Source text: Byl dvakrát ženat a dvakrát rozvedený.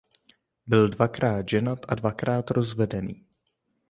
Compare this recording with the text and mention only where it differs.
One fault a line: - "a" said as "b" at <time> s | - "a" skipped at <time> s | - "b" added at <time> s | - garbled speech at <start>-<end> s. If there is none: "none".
none